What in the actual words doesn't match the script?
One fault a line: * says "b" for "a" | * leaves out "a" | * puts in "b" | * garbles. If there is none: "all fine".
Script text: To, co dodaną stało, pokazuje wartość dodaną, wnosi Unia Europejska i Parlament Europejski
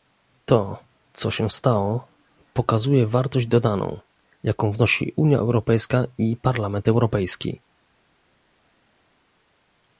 * says "się" for "dodaną"
* puts in "jaką"